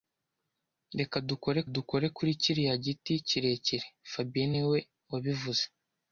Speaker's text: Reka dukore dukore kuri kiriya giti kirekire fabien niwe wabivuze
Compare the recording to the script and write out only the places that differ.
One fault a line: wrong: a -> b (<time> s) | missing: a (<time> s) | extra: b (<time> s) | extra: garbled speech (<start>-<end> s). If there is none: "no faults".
no faults